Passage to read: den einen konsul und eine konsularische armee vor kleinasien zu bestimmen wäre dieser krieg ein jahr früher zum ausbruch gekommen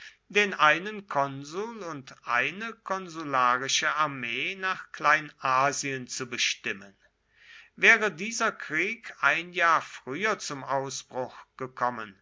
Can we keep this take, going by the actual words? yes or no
no